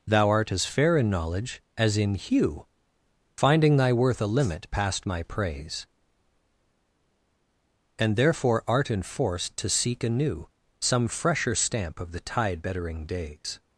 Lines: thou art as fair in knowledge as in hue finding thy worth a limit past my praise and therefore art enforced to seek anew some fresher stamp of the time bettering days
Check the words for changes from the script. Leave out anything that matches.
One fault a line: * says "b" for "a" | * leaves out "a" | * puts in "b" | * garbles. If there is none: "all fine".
* says "tide" for "time"